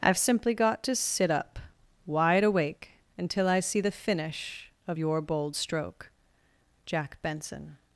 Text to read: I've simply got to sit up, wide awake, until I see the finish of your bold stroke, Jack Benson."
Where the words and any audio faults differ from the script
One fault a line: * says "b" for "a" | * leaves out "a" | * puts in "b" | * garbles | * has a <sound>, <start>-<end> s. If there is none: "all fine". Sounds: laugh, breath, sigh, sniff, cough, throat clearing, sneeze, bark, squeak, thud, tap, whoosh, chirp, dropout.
all fine